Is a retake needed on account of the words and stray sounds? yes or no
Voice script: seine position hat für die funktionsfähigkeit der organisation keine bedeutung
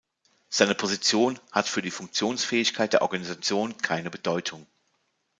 no